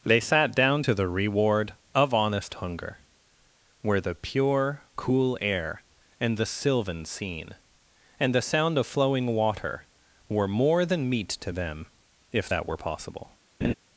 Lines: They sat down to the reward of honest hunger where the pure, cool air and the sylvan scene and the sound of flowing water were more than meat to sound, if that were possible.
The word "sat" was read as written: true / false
true